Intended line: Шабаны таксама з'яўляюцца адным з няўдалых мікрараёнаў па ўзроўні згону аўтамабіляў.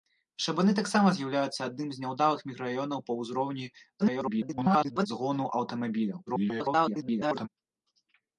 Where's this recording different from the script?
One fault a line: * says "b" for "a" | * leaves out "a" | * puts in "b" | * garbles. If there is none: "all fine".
* garbles
* garbles